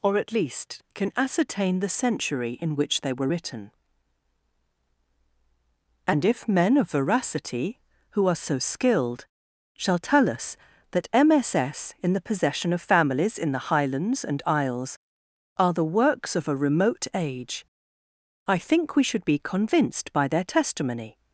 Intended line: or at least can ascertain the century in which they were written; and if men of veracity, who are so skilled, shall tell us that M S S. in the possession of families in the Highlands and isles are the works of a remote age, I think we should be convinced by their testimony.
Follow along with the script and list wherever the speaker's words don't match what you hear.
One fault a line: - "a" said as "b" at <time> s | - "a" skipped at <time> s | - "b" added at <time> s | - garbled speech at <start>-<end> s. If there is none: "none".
none